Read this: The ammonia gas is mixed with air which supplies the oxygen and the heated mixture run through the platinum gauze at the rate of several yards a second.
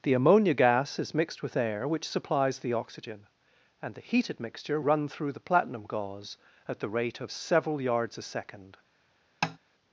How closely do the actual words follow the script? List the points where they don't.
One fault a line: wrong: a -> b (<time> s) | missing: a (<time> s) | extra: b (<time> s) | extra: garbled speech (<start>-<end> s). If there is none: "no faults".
no faults